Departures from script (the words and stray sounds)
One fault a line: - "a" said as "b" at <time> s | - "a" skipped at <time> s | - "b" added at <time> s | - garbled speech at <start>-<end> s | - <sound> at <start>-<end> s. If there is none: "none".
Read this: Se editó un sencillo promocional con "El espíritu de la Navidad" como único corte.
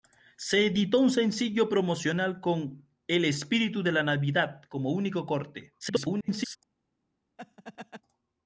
- garbled speech at 5.8-6.6 s
- laugh at 7.4-8.0 s